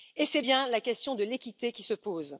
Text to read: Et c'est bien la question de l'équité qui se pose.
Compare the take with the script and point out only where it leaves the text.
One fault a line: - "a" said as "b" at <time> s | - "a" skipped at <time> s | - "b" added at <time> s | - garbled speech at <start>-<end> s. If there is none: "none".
none